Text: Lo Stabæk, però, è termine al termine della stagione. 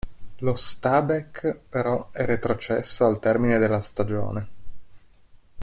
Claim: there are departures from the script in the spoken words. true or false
true